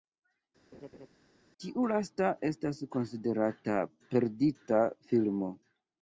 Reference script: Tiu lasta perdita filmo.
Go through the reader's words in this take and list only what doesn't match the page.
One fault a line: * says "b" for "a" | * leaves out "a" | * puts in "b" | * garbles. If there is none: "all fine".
* puts in "estas konsiderata"